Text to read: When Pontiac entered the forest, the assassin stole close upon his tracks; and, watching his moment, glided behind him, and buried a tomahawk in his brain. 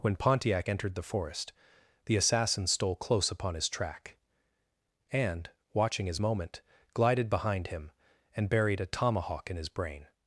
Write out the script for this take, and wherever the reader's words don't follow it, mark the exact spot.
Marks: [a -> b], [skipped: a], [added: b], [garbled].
When Pontiac entered the forest, the assassin stole close upon his [tracks; -> track] and, watching his moment, glided behind him, and buried a tomahawk in his brain.